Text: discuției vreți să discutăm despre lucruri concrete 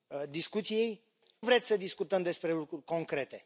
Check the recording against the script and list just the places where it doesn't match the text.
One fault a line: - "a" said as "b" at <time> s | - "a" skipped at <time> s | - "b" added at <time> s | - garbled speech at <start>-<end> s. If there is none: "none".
none